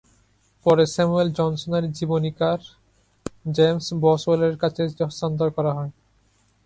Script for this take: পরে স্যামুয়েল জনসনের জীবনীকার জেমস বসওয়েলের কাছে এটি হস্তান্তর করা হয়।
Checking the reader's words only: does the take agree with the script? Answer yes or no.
yes